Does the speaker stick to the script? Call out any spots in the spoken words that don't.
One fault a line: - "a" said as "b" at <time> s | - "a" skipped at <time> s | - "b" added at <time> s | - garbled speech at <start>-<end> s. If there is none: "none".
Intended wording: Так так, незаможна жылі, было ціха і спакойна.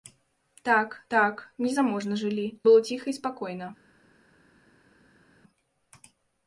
none